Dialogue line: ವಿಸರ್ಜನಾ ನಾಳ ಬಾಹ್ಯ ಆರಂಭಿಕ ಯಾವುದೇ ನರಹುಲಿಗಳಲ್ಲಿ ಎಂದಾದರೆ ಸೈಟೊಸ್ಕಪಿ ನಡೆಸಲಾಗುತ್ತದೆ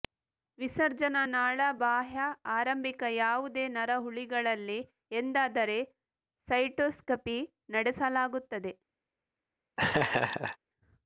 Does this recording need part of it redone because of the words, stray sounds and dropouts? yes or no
yes